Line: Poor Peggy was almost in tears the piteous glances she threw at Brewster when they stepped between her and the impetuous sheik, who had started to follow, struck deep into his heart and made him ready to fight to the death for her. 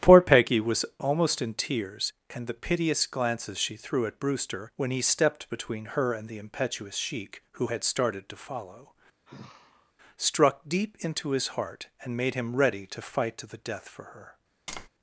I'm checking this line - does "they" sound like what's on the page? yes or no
no